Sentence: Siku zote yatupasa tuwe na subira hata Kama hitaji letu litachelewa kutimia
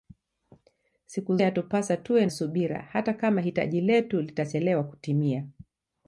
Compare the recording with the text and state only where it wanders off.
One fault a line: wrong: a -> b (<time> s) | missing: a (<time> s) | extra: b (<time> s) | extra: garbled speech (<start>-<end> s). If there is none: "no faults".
missing: zote (1.4 s)
missing: na (2.3 s)